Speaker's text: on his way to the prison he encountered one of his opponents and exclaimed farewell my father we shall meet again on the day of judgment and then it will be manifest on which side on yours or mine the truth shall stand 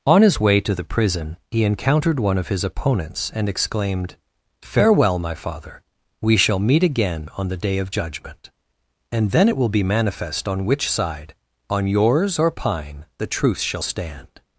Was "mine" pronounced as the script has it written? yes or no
no